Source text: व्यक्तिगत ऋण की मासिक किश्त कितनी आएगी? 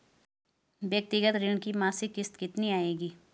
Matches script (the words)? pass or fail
pass